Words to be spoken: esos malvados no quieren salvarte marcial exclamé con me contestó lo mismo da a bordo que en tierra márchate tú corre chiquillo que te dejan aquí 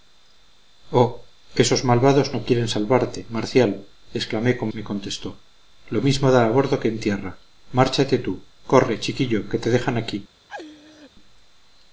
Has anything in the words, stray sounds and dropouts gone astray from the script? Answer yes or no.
yes